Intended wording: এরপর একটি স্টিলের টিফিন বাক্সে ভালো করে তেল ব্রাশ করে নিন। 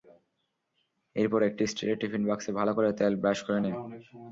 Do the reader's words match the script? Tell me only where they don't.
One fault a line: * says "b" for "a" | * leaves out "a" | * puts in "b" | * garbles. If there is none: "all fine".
all fine